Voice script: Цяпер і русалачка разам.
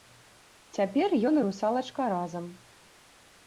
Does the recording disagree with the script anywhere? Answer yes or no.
yes